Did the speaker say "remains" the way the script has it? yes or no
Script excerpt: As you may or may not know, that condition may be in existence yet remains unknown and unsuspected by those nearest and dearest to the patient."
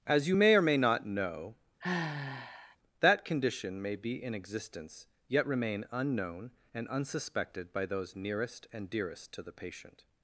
no